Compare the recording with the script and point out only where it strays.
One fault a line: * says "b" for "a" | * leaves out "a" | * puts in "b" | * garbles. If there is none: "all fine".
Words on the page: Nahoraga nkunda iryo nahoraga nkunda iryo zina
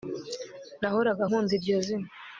* leaves out "nahoraga nkunda iryo"